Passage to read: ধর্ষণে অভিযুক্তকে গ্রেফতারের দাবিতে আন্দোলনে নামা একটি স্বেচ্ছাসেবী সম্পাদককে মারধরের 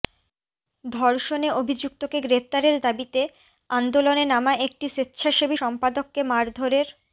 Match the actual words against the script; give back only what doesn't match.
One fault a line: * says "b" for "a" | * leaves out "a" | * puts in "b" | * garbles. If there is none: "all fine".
all fine